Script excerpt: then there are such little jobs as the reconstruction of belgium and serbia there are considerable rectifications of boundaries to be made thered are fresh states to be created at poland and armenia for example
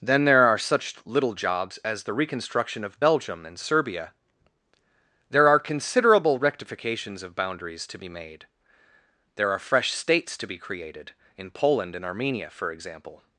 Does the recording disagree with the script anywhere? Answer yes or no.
yes